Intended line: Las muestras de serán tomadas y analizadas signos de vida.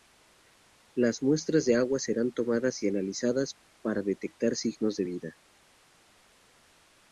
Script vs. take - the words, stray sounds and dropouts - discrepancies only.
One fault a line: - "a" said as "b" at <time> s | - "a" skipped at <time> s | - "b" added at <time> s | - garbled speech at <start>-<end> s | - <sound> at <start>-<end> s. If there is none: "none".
- "agua" added at 1.8 s
- "para detectar" added at 3.8 s